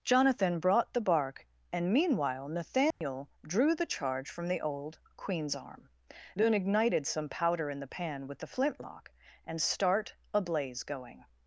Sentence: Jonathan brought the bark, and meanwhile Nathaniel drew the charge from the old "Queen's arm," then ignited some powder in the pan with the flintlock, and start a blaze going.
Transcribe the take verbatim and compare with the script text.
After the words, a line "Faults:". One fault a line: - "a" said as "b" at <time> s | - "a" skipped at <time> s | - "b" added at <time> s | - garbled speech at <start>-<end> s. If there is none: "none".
Jonathan brought the bark, and meanwhile Nathaniel drew the charge from the old "Queen's arm," then ignited some powder in the pan with the flintlock, and start a blaze going.
Faults:
none